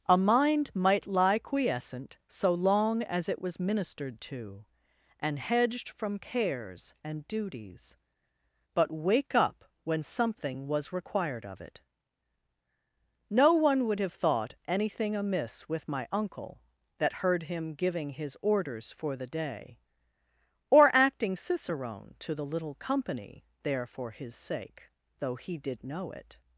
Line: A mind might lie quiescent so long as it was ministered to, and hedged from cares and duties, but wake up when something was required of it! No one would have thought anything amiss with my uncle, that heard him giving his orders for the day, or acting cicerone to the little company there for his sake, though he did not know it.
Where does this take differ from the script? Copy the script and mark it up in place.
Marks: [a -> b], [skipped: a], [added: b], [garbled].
A mind might lie quiescent so long as it was ministered to, and hedged from cares and duties, but wake up when something was required of it! No one would have thought anything amiss with my uncle, that heard him giving his orders for the day, or acting cicerone to the little company there for his sake, though he did [skipped: not] know it.